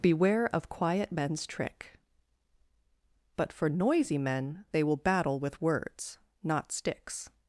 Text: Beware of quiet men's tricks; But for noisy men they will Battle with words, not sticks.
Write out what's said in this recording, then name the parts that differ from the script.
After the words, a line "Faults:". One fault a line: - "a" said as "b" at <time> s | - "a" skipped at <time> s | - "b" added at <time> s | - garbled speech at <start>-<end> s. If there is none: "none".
Beware of quiet men's trick; But for noisy men they will Battle with words, not sticks.
Faults:
- "tricks" said as "trick" at 1.4 s